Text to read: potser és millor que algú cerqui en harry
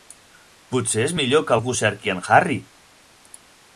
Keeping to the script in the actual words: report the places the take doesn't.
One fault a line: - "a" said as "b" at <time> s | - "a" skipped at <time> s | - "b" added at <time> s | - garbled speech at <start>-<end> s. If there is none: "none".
none